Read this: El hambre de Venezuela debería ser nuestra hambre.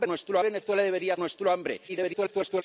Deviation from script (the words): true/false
true